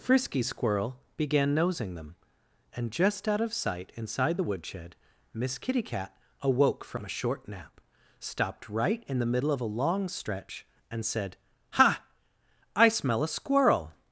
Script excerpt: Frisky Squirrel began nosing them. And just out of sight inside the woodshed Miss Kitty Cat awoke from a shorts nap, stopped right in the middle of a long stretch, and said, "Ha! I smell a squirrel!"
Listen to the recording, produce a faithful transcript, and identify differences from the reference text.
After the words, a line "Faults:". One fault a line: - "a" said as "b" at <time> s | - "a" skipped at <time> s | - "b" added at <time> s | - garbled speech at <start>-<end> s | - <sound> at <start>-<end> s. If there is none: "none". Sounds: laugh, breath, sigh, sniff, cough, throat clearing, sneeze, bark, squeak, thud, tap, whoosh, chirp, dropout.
Frisky Squirrel began nosing them. And just out of sight inside the woodshed Miss Kitty Cat awoke from a short nap, stopped right in the middle of a long stretch, and said, "Ha! I smell a squirrel!"
Faults:
- "shorts" said as "short" at 7.1 s